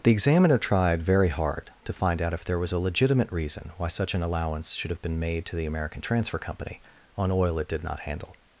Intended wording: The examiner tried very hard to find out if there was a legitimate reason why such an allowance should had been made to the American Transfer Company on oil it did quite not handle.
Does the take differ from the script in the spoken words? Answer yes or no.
yes